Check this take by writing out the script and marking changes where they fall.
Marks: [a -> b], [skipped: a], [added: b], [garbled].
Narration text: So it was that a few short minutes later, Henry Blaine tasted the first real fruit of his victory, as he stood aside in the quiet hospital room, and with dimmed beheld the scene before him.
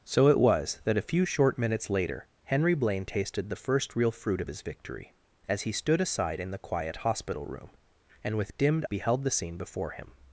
So it was that a few short minutes later, Henry Blaine tasted the first real fruit of his victory, as he stood aside in the quiet hospital room, and with dimmed beheld the scene before him.